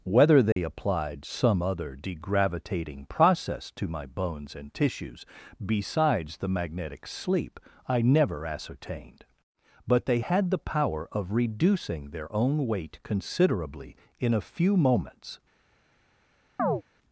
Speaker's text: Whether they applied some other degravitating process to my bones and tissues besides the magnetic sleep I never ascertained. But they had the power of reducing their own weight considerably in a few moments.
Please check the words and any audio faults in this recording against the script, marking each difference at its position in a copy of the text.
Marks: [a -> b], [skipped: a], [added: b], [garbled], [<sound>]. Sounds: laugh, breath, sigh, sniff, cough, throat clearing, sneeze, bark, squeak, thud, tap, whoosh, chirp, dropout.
Whether they [dropout] applied some other degravitating process to my bones and tissues besides the magnetic sleep I never ascertained. But they had the power of reducing their own weight considerably in a few moments. [chirp]